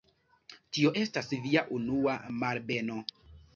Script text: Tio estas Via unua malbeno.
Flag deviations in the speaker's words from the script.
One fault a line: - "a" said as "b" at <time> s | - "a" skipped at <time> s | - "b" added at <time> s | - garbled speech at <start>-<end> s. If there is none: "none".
none